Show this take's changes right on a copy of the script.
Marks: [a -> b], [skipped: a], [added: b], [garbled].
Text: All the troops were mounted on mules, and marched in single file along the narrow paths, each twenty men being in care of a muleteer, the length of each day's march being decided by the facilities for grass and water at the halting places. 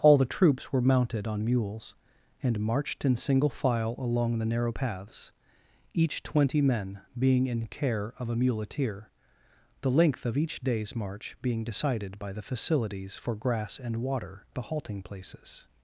All the troops were mounted on mules, and marched in single file along the narrow paths, each twenty men being in care of a muleteer, the length of each day's march being decided by the facilities for grass and water [skipped: at] the halting places.